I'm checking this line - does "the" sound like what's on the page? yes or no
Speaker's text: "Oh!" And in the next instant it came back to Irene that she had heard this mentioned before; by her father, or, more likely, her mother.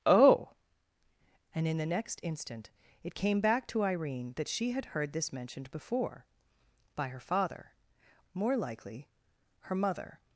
yes